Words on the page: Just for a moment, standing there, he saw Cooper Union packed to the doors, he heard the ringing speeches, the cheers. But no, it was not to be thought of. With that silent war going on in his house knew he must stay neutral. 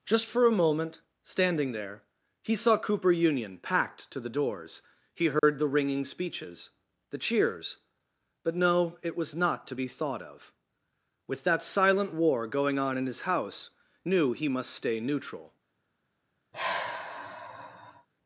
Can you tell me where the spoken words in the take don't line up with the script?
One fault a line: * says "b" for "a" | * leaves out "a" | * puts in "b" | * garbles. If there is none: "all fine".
all fine